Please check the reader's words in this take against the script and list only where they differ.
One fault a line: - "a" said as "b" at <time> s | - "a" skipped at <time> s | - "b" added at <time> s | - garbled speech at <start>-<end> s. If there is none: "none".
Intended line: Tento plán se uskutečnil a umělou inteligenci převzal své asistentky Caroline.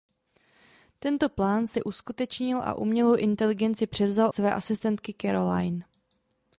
none